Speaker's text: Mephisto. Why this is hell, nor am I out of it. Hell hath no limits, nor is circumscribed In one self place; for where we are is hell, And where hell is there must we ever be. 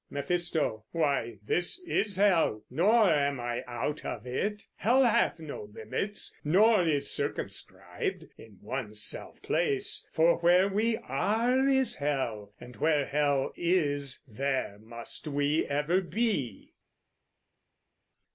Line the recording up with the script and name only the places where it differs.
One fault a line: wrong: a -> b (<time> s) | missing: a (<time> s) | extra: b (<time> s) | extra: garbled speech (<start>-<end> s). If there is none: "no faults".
no faults